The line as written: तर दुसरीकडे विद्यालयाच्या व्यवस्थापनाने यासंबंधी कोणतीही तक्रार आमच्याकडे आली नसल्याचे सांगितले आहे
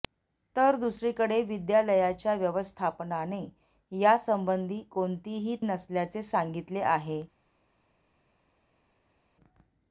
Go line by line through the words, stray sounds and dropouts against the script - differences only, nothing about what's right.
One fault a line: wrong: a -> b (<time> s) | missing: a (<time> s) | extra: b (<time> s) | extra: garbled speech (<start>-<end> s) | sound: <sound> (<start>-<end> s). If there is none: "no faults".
missing: तक्रार आमच्याकडे आली (5.5 s)